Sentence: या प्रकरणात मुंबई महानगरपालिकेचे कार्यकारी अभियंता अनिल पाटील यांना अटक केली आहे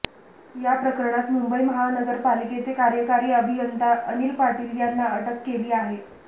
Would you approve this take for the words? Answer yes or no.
yes